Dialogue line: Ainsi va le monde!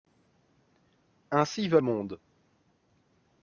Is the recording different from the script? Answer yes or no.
yes